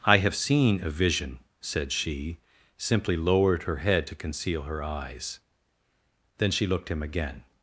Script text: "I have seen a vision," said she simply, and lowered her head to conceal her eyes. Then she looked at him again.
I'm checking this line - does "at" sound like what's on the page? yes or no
no